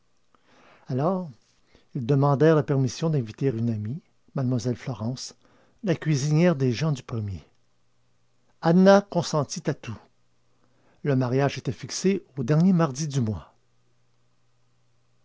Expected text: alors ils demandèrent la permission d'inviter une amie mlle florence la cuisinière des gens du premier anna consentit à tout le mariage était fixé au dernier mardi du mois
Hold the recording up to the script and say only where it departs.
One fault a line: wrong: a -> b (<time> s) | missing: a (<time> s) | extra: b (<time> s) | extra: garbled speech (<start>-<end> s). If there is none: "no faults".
no faults